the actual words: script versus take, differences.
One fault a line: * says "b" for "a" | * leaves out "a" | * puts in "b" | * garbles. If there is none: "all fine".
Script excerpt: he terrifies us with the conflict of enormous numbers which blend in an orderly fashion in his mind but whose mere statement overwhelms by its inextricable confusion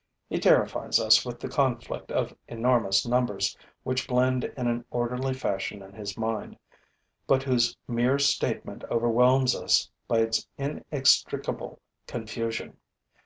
* puts in "us"